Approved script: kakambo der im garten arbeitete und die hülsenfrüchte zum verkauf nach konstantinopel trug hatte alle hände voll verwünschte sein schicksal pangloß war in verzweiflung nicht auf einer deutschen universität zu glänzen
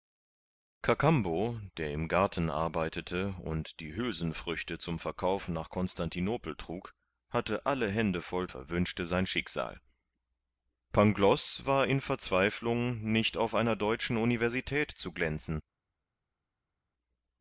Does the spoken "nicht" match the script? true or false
true